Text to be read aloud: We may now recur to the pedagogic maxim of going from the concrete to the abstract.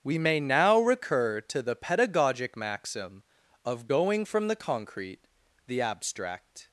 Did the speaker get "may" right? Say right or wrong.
right